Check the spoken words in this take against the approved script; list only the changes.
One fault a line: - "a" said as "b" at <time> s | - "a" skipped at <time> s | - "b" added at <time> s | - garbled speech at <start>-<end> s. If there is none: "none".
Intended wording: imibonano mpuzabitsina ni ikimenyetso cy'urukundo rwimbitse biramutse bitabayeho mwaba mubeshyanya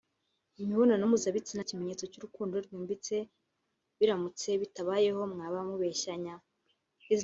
- "ni" skipped at 1.6 s